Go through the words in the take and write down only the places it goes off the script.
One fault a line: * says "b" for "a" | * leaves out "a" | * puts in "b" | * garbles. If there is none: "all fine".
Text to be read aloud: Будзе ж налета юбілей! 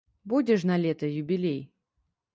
all fine